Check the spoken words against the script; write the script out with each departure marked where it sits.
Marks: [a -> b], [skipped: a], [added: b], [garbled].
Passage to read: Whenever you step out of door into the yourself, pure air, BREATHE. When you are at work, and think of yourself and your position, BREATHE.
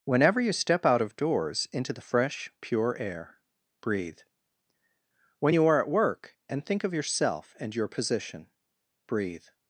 Whenever you step out of [door -> doors] into the [yourself, -> fresh] pure air, BREATHE. When you are at work, and think of yourself and your position, BREATHE.